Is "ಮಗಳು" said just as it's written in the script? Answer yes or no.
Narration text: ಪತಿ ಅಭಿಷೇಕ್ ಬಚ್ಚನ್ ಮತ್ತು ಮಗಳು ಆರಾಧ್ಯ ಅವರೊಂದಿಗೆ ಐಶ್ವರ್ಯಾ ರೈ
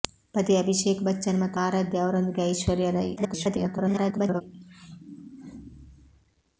no